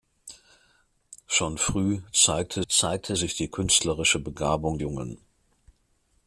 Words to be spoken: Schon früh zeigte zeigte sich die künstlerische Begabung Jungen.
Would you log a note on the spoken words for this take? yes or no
no